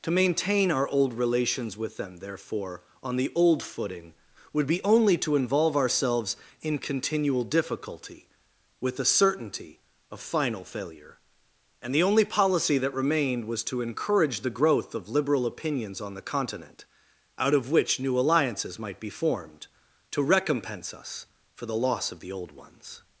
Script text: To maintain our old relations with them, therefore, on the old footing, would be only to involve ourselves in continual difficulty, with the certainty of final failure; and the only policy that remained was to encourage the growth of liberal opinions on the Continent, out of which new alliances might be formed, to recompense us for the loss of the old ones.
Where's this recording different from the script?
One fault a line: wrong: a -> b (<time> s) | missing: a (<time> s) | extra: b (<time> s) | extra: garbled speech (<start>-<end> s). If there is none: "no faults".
no faults